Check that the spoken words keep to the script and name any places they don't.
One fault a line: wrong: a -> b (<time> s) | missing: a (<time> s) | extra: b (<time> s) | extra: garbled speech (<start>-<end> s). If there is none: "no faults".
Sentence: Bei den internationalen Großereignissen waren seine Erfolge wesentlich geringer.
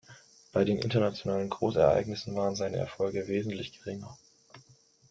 no faults